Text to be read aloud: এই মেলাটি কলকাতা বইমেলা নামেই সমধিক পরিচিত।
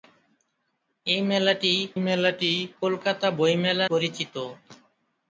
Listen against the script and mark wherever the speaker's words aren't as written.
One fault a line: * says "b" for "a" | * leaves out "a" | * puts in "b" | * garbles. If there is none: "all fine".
* puts in "মেলাটি"
* leaves out "নামেই সমধিক"